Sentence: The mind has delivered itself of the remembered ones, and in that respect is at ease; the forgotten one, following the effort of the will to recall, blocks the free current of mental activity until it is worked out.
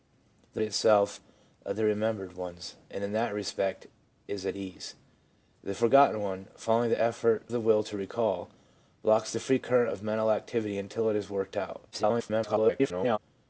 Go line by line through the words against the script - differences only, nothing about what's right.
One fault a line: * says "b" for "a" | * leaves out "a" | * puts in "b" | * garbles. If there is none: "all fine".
* leaves out "mind has delivered"
* leaves out "of"
* garbles